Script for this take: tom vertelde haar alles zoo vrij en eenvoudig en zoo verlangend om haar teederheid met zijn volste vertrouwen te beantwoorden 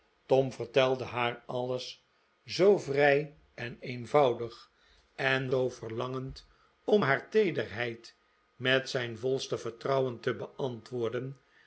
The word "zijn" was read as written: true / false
true